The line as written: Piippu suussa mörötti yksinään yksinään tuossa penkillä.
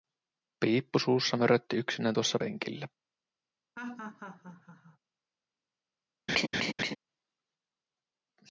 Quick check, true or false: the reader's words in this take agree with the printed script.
false